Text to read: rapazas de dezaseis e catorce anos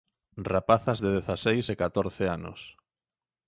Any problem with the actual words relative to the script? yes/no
no